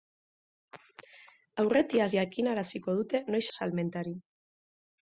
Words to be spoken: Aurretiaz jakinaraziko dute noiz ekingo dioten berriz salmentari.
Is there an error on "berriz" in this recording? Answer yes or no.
yes